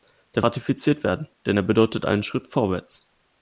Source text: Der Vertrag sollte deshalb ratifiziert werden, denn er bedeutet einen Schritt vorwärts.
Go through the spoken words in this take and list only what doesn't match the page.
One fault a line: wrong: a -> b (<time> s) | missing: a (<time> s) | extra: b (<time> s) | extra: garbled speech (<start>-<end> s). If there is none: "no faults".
missing: Vertrag sollte deshalb (0.4 s)